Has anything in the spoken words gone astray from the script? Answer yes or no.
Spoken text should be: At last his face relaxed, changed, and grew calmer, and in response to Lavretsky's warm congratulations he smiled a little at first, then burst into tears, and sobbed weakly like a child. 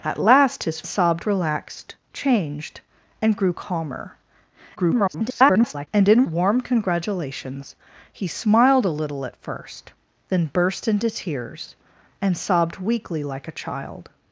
yes